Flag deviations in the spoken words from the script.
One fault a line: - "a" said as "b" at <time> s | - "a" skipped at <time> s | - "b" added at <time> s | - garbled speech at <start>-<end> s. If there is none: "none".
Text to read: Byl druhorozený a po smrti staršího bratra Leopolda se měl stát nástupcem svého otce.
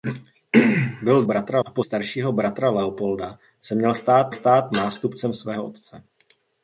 - "druhorozený" said as "bratra" at 1.2 s
- "smrti" skipped at 1.8 s
- "stát" added at 4.3 s